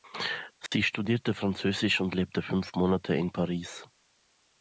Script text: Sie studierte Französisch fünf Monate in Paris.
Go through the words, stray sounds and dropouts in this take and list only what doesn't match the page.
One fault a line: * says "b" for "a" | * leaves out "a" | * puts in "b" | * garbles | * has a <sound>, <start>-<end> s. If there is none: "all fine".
* has a dropout, 0.7-0.7 s
* puts in "und lebte"